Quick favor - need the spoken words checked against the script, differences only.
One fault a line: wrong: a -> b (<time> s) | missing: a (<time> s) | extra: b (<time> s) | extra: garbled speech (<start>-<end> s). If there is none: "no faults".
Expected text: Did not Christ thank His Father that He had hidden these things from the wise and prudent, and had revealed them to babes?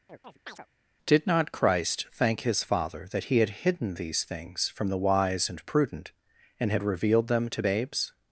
no faults